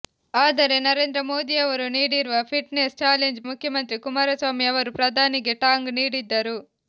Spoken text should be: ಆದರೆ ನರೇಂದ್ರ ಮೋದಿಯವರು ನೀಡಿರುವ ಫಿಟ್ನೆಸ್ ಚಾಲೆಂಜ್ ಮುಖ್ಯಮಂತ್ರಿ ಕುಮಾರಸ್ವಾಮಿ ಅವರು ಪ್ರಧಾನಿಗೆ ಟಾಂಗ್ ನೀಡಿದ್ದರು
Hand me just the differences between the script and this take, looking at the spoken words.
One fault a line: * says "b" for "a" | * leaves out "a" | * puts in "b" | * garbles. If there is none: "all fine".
all fine